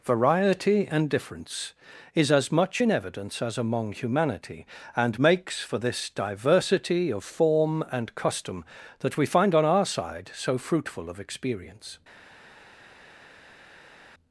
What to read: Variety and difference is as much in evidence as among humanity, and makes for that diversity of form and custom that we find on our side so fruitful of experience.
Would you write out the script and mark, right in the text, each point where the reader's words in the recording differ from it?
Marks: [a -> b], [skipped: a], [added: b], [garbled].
Variety and difference is as much in evidence as among humanity, and makes for [that -> this] diversity of form and custom that we find on our side so fruitful of experience.